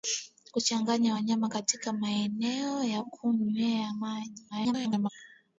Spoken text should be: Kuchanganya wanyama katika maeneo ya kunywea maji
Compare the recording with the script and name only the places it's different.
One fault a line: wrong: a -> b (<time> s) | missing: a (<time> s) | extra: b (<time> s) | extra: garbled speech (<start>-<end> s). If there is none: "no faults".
extra: garbled speech (4.5-5.1 s)